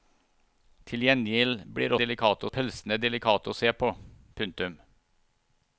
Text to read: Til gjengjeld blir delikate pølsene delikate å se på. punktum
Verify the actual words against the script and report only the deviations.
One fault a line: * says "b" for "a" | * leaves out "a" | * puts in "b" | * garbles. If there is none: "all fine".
all fine